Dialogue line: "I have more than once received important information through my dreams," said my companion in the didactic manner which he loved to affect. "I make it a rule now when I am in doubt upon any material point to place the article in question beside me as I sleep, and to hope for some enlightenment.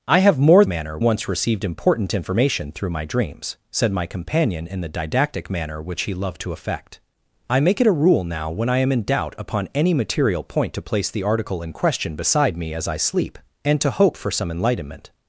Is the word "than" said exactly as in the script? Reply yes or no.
no